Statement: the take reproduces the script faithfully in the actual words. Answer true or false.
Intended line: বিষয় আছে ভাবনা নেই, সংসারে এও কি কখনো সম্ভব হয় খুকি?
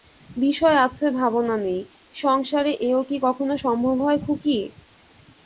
true